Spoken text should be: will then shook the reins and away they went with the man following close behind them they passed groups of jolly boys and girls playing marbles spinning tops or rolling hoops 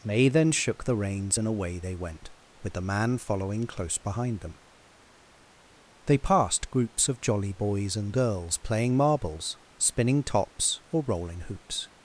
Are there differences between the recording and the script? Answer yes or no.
yes